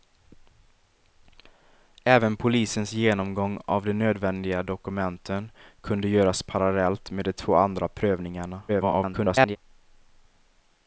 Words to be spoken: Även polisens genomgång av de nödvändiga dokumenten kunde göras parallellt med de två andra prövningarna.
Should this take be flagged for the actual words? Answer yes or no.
yes